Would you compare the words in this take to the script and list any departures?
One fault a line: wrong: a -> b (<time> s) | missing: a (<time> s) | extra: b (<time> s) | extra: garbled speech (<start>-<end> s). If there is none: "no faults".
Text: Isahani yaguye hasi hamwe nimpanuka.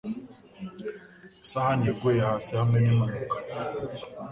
no faults